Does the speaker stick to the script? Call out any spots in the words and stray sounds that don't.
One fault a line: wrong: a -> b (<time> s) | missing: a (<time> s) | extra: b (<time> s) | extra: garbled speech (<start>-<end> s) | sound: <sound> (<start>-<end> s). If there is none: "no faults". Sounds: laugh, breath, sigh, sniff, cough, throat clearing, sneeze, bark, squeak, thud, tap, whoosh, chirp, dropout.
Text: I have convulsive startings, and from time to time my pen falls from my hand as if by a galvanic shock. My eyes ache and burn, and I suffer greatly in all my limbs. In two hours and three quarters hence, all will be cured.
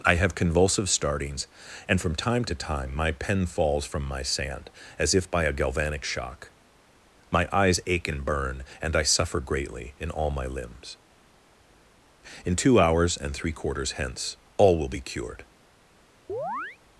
wrong: hand -> sand (4.2 s)
sound: chirp (16.3-16.8 s)